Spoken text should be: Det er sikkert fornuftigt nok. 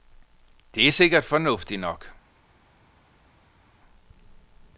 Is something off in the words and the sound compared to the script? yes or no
no